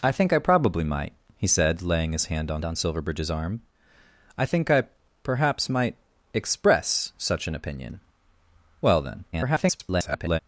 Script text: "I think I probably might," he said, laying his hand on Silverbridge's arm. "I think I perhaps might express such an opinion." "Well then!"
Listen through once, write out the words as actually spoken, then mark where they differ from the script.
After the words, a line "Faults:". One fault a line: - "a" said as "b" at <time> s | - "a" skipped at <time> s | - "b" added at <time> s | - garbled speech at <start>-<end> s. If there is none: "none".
"I think I probably might," he said, laying his hand on on Silverbridge's arm. "I think I perhaps might express such an opinion." "Well then!" [garbled]
Faults:
- "on" added at 2.6 s
- garbled speech at 9.3-10.4 s